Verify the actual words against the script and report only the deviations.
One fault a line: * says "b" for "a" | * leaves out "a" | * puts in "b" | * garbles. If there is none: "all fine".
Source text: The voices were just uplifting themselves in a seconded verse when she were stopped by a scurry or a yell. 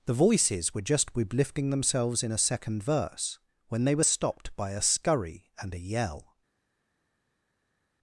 * says "second" for "seconded"
* says "they" for "she"
* says "and" for "or"